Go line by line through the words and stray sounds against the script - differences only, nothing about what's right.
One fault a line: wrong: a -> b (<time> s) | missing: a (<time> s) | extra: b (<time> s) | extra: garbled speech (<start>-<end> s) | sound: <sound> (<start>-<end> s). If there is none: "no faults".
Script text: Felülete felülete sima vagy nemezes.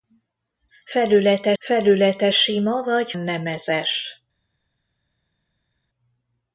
no faults